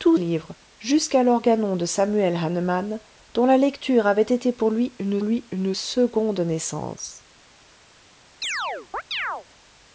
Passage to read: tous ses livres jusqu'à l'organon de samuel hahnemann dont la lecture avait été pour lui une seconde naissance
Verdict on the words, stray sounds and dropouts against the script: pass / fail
fail